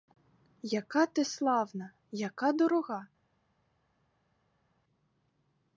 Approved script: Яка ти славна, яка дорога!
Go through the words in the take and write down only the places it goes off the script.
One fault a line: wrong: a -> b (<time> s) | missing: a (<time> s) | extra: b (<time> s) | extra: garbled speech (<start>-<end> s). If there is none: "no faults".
no faults